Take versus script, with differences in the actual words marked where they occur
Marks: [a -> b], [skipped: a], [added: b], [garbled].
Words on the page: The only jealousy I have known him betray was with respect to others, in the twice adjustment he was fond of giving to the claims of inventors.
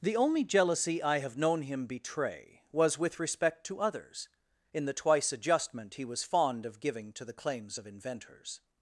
The only jealousy I have known him betray was with respect to others, in the twice adjustment he was fond of giving to the claims of inventors.